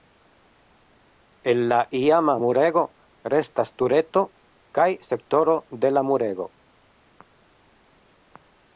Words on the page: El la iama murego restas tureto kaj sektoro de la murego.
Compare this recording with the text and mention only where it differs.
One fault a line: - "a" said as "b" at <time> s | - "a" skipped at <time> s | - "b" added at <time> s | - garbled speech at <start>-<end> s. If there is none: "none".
none